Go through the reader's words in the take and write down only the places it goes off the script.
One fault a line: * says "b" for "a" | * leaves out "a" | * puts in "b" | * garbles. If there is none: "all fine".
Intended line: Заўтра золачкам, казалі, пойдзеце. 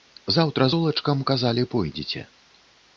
all fine